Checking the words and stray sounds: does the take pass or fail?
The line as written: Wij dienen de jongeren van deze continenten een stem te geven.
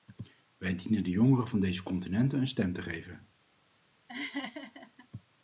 fail